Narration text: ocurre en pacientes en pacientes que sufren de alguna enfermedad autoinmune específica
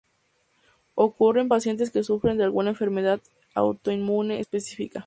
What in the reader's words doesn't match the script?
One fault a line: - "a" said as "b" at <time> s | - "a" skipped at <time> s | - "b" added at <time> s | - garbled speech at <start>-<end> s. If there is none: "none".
- "en pacientes" skipped at 1.9 s